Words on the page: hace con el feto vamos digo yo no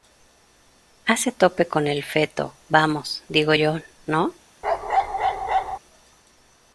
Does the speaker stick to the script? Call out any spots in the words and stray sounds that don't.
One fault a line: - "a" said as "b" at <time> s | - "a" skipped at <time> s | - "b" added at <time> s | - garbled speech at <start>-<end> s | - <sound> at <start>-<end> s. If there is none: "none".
- "tope" added at 1.3 s
- bark at 4.6-5.8 s